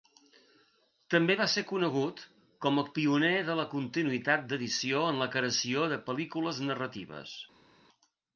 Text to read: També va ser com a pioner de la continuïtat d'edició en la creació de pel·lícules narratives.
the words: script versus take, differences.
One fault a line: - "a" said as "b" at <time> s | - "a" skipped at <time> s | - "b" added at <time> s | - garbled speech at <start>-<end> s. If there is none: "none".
- "conegut" added at 1.7 s